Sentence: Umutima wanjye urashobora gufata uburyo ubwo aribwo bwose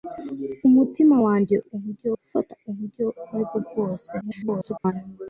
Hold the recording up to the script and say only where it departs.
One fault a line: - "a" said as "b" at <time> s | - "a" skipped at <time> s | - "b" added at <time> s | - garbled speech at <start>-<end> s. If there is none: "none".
- "urashobora" said as "uburyo" at 1.7 s
- garbled speech at 4.2-4.9 s